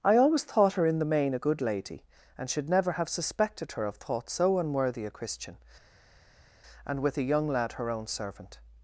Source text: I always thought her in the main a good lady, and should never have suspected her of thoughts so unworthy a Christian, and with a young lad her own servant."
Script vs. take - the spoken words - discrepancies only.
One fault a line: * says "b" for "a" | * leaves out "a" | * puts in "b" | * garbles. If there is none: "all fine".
all fine